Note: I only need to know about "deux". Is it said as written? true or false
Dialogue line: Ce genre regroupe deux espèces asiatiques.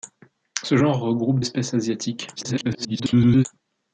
false